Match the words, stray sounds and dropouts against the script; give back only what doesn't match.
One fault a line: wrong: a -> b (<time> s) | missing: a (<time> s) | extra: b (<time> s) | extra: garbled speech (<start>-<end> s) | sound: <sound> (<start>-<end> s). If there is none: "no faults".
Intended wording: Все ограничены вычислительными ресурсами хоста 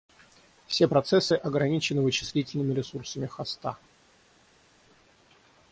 extra: процессы (0.8 s)